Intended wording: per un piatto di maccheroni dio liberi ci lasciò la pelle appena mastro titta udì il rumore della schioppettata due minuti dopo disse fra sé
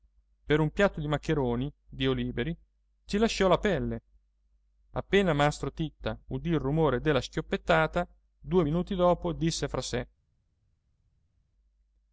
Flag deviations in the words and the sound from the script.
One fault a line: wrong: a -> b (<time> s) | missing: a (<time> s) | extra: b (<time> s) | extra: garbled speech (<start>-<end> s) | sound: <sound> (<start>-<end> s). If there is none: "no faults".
no faults